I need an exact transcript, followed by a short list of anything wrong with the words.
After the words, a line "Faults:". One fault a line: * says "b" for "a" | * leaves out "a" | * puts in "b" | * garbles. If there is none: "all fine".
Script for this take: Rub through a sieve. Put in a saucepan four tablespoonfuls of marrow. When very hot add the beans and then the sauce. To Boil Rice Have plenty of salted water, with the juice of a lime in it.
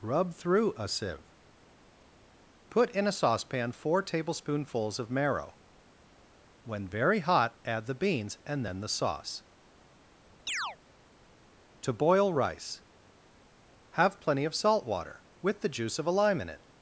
Rub through a sieve. Put in a saucepan four tablespoonfuls of marrow. When very hot add the beans and then the sauce. To Boil Rice Have plenty of salt water, with the juice of a lime in it.
Faults:
* says "salt" for "salted"